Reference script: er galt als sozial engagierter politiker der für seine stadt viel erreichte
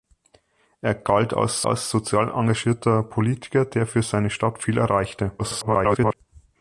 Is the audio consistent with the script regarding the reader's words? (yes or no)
no